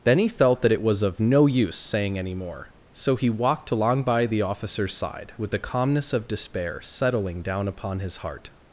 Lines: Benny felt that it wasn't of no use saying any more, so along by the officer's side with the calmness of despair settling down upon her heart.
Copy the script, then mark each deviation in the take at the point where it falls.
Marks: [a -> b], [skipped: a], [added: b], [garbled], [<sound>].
Benny felt that it [wasn't -> was] of no use saying any more, so [added: he walked] along by the officer's side with the calmness of despair settling down upon [her -> his] heart.